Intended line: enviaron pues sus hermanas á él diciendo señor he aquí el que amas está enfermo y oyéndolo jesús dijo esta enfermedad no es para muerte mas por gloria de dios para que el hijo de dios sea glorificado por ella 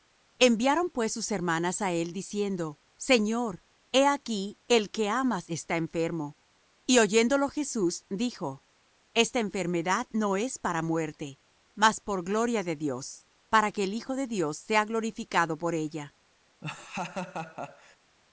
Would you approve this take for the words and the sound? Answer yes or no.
no